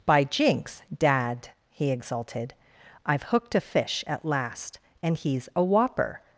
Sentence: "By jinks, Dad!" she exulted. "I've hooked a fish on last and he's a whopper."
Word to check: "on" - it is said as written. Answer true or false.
false